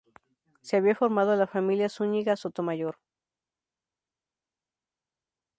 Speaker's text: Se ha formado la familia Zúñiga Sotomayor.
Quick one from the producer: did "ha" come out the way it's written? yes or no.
no